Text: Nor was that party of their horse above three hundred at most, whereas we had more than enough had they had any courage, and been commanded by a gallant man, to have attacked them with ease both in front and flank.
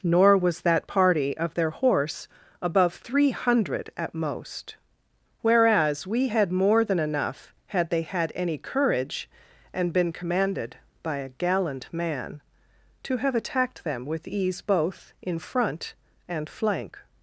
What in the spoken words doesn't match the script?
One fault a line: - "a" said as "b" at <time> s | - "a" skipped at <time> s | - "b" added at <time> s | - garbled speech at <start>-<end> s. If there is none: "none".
none